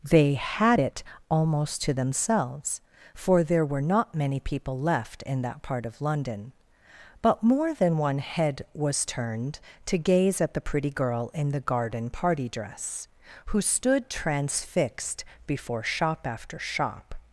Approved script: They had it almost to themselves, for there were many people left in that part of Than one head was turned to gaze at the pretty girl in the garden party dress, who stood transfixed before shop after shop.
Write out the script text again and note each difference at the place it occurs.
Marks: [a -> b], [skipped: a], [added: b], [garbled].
They had it almost to themselves, for there were [added: not] many people left in that part of [added: London but more] Than one head was turned to gaze at the pretty girl in the garden party dress, who stood transfixed before shop after shop.